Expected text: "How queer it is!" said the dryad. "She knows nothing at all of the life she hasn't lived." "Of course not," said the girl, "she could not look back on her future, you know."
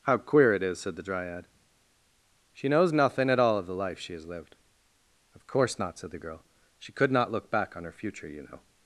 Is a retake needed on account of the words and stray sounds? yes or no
yes